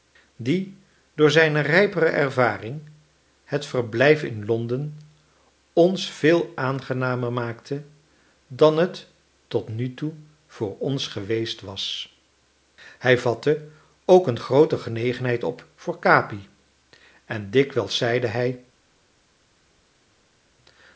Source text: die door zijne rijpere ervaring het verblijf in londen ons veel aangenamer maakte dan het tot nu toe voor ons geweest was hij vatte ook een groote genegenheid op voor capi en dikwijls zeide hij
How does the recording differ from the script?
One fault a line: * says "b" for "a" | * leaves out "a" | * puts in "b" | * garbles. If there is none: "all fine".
all fine